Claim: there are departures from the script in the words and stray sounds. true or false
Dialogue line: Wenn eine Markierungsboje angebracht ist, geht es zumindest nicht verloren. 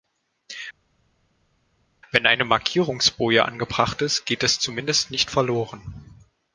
false